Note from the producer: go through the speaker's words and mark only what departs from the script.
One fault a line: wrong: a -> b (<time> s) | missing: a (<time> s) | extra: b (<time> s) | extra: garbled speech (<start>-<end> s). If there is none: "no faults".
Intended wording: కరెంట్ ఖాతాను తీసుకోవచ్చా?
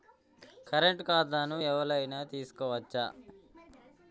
extra: ఎవలైనా (1.6 s)